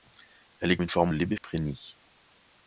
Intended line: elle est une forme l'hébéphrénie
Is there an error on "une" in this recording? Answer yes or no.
no